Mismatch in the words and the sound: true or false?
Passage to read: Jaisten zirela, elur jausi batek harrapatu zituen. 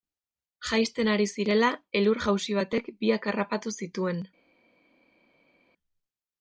true